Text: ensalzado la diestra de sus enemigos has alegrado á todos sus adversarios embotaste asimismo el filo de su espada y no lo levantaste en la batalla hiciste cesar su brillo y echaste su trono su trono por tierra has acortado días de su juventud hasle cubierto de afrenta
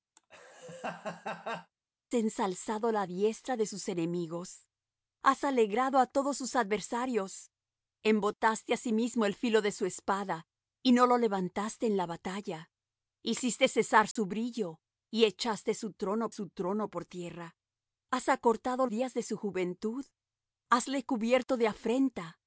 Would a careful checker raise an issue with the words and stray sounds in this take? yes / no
yes